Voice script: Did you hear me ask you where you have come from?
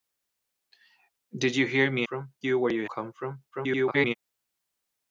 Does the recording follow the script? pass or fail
fail